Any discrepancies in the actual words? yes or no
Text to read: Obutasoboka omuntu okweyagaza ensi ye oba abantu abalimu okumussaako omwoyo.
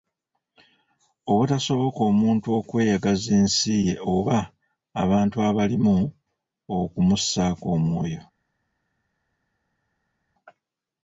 no